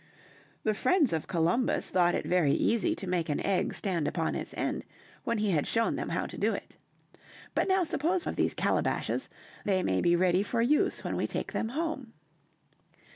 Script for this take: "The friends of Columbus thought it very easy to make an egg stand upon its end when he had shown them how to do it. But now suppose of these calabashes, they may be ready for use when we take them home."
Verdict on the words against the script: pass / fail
pass